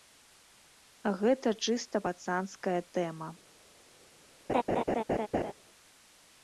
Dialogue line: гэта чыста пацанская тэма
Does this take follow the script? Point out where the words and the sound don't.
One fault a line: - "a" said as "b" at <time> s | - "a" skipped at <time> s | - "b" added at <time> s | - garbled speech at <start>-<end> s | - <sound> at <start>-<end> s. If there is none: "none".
- laugh at 4.5-5.5 s